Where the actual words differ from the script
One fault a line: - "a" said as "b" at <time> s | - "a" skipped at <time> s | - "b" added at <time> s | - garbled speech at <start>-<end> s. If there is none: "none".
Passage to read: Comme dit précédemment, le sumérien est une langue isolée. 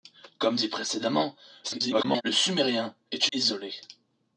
- garbled speech at 1.6-2.2 s
- "une langue" skipped at 3.3 s